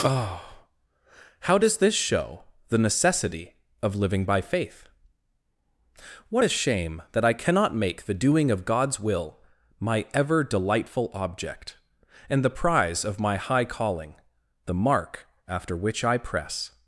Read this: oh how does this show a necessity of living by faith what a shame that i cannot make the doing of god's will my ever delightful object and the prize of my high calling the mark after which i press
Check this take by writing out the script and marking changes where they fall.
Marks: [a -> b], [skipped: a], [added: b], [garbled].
oh how does this show [a -> the] necessity of living by faith what a shame that i cannot make the doing of god's will my ever delightful object and the prize of my high calling the mark after which i press